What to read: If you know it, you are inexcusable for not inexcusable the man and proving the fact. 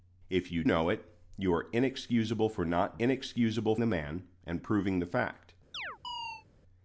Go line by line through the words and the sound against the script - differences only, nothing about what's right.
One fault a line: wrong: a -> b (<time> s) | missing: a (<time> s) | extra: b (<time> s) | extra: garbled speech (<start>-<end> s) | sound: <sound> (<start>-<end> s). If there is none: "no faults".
sound: chirp (5.7-6.5 s)